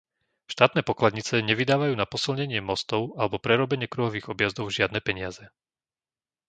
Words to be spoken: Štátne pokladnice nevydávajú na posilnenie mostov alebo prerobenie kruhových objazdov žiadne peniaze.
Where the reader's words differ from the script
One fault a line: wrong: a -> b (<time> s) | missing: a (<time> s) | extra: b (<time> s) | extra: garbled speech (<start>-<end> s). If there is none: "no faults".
no faults